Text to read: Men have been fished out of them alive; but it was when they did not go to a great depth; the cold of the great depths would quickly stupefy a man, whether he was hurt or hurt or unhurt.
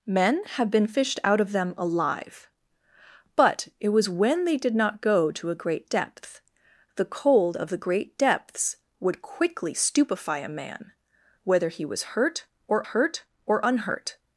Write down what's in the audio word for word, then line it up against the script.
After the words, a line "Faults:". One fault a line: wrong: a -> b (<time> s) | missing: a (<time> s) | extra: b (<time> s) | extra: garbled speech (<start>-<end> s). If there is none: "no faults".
Men have been fished out of them alive; but it was when they did not go to a great depth; the cold of the great depths would quickly stupefy a man, whether he was hurt or hurt or unhurt.
Faults:
no faults